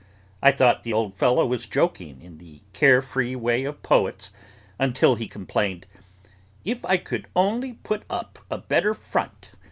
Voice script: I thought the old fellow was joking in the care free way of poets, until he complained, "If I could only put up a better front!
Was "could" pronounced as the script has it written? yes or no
yes